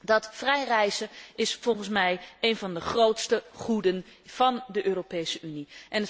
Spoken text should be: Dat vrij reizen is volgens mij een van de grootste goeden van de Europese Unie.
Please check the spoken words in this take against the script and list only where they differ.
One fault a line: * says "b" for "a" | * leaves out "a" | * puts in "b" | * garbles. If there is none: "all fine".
all fine